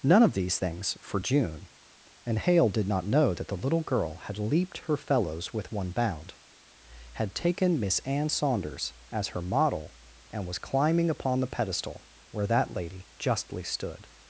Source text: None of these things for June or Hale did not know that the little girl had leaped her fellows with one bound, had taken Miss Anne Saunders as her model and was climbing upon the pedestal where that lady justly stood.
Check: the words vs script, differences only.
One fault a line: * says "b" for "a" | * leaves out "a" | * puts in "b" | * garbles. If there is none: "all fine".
* says "and" for "or"